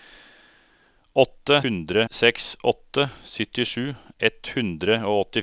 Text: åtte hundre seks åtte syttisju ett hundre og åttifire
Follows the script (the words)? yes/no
yes